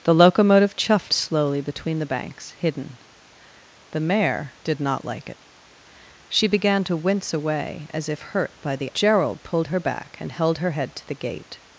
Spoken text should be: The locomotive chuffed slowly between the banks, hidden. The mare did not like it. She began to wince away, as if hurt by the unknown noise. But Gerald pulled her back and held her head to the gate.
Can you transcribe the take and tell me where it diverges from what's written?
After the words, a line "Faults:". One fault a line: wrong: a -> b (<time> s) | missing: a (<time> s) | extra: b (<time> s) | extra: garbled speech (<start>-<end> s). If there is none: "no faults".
The locomotive chuffed slowly between the banks, hidden. The mare did not like it. She began to wince away, as if hurt by the Gerald pulled her back and held her head to the gate.
Faults:
missing: unknown noise But (8.9 s)